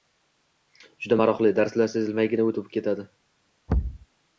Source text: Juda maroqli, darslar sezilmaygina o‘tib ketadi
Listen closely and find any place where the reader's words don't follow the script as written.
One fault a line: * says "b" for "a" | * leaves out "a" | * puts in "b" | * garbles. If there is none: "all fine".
all fine